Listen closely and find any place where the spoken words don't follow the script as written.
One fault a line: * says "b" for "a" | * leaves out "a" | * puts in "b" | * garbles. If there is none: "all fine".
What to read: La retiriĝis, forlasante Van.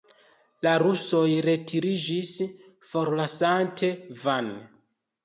* puts in "rusoj"